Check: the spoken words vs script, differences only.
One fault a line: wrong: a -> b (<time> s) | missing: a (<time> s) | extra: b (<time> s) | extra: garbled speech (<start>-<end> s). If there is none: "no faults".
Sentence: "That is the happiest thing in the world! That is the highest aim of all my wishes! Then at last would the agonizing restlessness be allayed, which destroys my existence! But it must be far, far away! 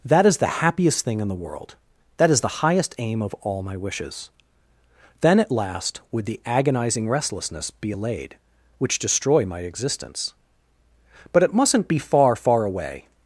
wrong: destroys -> destroy (9.0 s)
wrong: must -> mustn't (11.5 s)